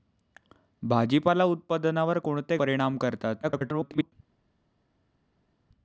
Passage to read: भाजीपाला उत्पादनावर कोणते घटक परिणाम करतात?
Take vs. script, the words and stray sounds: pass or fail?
fail